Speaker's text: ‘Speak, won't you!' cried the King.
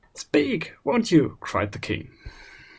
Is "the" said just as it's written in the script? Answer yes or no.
yes